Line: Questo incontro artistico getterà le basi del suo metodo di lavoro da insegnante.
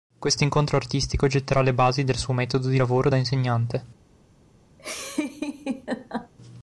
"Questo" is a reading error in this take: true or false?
false